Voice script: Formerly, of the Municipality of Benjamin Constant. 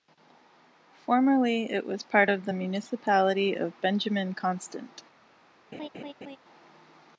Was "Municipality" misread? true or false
false